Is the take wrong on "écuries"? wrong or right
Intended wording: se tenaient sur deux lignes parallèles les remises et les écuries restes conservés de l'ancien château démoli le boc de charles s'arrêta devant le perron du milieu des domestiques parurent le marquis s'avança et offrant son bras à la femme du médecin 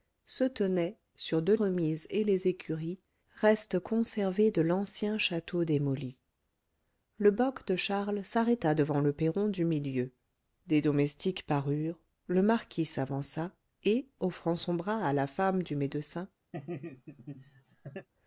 right